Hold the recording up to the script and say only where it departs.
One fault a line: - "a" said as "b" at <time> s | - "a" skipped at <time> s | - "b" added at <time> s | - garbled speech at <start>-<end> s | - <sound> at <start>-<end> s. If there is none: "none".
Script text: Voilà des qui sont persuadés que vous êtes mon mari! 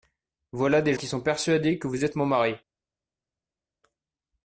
none